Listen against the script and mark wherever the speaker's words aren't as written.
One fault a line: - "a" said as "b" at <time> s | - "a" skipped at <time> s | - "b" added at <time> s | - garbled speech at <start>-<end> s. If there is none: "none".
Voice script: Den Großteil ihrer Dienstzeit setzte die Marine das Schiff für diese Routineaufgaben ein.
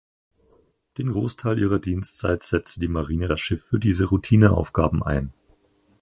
none